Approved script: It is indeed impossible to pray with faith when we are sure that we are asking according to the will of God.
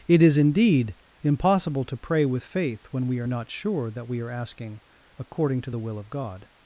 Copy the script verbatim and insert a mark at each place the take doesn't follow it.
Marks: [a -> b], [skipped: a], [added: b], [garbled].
It is indeed impossible to pray with faith when we are [added: not] sure that we are asking according to the will of God.